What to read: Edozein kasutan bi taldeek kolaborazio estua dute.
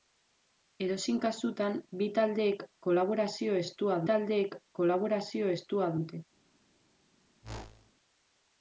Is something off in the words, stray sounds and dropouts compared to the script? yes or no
yes